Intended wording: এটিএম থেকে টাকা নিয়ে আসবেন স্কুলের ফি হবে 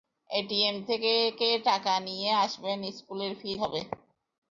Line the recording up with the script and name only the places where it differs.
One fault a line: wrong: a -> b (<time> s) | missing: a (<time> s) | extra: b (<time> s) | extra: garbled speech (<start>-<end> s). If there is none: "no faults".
no faults